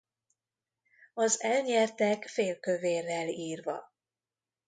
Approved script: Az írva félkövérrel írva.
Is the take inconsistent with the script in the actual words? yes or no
yes